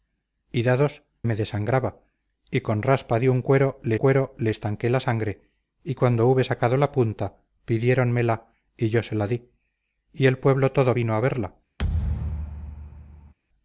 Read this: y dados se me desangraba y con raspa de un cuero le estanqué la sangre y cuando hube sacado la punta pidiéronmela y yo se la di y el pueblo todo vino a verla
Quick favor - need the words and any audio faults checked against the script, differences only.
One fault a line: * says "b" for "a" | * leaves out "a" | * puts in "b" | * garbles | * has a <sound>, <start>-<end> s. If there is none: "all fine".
* leaves out "se"
* puts in "cuero le"
* has a thud, 11.8-13.3 s